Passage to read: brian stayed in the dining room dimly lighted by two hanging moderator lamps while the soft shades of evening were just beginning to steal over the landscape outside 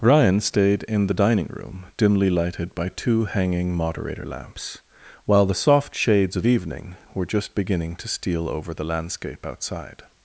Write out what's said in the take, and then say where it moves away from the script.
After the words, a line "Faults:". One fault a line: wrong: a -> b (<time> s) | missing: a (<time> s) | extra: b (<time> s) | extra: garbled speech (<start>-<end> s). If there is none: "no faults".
ryan stayed in the dining room dimly lighted by two hanging moderator lamps while the soft shades of evening were just beginning to steal over the landscape outside
Faults:
wrong: brian -> ryan (0.0 s)